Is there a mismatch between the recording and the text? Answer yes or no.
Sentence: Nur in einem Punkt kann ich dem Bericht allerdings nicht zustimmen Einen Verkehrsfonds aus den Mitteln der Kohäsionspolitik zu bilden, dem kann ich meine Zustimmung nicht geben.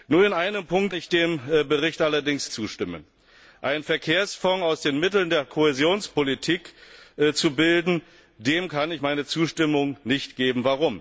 yes